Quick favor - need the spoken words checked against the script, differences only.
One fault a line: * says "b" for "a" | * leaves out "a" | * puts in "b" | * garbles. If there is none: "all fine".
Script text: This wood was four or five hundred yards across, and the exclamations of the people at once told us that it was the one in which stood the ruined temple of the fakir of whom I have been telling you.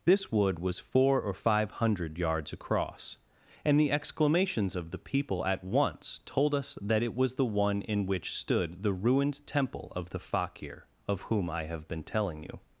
all fine